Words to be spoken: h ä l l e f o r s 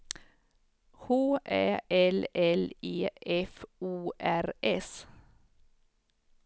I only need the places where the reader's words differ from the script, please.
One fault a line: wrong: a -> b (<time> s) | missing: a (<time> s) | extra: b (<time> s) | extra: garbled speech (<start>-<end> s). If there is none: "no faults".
no faults